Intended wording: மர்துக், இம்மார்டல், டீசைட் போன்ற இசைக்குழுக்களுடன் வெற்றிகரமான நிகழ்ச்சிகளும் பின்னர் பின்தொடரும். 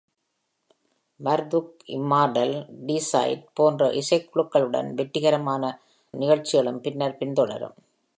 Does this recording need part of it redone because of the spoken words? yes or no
no